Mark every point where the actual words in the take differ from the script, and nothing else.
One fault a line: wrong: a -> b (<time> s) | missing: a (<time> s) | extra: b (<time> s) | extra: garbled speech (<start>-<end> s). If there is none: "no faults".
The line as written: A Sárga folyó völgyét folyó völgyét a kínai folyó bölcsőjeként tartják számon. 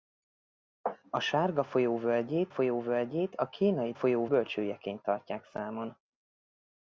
no faults